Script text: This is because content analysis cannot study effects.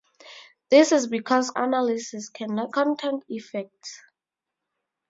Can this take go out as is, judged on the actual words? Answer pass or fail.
fail